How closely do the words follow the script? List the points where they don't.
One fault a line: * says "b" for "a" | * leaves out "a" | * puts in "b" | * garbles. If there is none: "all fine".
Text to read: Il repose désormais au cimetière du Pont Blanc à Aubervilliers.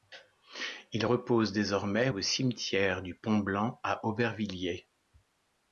all fine